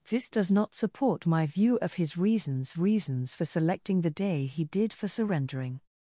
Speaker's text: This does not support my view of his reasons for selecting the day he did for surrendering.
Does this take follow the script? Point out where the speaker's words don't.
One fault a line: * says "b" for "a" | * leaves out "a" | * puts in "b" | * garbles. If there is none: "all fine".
* puts in "reasons"